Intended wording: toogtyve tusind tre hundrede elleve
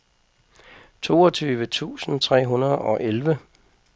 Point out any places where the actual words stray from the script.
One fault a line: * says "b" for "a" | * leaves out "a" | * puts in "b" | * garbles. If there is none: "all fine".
* puts in "og"